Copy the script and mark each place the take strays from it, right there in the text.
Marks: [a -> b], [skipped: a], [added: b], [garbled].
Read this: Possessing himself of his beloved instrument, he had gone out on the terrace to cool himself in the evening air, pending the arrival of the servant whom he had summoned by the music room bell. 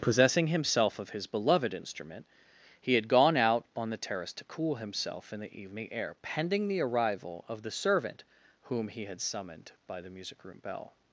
Possessing himself of his beloved instrument, he had gone out on the terrace to cool himself in the evening air, pending the arrival of the servant whom he had summoned by the music room bell.